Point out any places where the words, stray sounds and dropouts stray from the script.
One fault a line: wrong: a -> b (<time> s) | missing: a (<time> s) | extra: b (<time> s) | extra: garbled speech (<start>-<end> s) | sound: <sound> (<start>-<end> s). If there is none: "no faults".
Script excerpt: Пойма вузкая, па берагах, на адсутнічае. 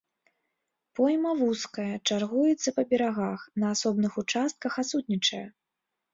extra: чаргуецца (2.1 s)
extra: асобных участках (3.7 s)